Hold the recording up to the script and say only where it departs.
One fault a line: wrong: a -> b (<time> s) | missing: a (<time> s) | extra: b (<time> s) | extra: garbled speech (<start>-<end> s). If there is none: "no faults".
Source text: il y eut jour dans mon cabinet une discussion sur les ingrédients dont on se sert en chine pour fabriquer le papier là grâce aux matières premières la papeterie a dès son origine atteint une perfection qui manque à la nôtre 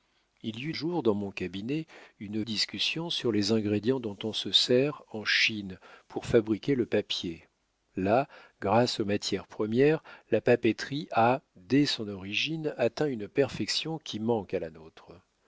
no faults